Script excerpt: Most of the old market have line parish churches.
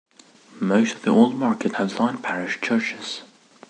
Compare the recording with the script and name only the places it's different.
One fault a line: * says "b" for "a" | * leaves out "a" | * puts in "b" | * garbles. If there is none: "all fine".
all fine